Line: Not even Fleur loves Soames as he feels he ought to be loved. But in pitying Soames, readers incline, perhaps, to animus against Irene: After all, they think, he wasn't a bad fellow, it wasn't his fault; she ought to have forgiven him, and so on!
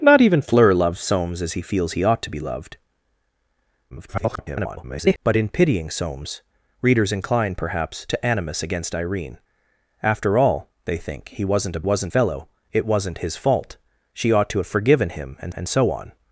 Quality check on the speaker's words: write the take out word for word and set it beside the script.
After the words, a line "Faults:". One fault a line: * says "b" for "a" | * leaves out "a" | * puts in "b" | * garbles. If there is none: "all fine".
Not even Fleur loves Soames as he feels he ought to be loved. [garbled] But in pitying Soames, readers incline, perhaps, to animus against Irene: After all, they think, he wasn't a wasn't fellow, it wasn't his fault; she ought to have forgiven him, and and so on!
Faults:
* garbles
* says "wasn't" for "bad"
* puts in "and"